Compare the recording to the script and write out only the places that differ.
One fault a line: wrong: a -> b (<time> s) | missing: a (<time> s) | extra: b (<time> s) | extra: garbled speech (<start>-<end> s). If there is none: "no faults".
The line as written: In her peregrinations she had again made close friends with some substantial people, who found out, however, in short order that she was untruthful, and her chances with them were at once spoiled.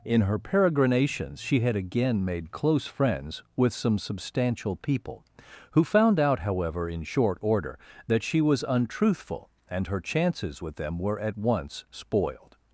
no faults